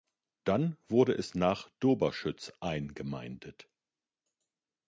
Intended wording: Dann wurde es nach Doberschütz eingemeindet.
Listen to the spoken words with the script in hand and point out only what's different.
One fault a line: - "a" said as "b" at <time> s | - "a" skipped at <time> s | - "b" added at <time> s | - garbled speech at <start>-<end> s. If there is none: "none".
none